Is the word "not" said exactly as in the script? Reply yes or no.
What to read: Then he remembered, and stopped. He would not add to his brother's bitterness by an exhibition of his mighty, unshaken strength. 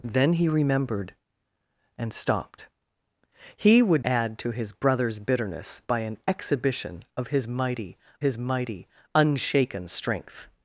no